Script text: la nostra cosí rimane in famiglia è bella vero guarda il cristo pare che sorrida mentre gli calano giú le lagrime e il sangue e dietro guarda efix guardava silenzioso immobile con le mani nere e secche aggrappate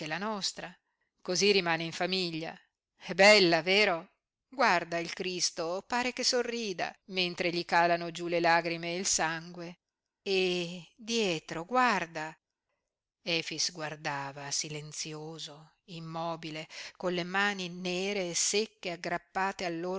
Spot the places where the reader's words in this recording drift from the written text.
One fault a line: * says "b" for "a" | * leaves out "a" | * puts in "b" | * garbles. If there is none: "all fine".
all fine